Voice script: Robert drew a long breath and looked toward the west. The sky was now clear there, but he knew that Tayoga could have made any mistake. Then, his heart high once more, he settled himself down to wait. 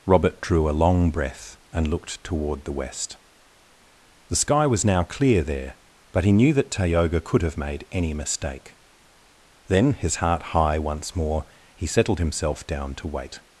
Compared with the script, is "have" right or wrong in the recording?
right